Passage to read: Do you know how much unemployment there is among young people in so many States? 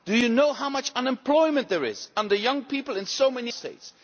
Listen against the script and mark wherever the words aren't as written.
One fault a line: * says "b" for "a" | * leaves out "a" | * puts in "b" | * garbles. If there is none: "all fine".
all fine